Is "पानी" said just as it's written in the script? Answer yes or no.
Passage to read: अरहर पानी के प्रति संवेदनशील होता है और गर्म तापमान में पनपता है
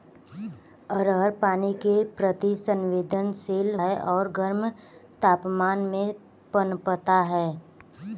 yes